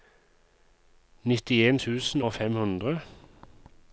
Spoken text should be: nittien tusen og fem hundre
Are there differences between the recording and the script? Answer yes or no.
no